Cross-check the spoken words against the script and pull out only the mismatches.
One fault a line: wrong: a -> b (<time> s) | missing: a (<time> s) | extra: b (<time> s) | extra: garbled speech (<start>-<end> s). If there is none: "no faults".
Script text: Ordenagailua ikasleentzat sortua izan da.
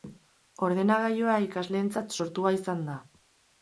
no faults